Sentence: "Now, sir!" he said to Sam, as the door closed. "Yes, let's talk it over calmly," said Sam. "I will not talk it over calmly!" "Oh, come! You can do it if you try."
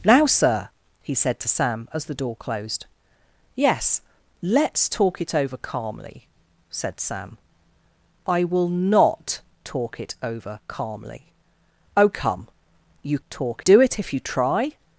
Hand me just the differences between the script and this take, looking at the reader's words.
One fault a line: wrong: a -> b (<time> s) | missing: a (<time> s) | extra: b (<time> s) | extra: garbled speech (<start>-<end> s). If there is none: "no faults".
wrong: can -> talk (13.3 s)